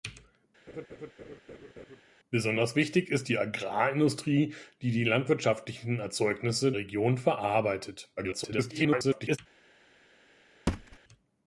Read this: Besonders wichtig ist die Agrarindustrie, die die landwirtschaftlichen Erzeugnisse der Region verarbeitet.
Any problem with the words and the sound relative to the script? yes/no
yes